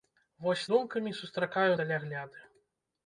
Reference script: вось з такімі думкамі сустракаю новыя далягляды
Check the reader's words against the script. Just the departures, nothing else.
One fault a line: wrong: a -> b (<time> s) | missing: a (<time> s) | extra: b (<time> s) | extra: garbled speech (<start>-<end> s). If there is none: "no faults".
missing: такімі (0.7 s)
missing: новыя (1.7 s)